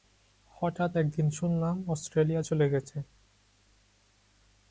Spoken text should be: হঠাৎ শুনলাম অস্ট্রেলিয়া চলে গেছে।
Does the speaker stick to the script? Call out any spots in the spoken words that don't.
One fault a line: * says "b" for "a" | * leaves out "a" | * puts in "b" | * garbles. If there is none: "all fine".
* puts in "একদিন"